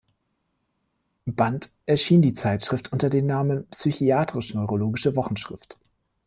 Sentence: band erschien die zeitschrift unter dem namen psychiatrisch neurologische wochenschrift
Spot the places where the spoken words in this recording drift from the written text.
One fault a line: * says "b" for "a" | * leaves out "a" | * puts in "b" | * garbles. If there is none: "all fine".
all fine